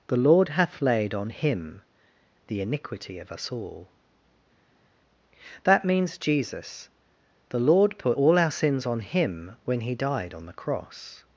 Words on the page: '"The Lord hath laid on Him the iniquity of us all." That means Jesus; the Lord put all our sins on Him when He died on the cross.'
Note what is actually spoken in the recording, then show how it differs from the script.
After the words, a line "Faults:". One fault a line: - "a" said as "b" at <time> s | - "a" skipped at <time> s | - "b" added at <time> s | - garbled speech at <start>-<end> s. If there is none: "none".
'"The Lord hath laid on Him the iniquity of us all." That means Jesus; the Lord put all our sins on Him when He died on the cross.'
Faults:
none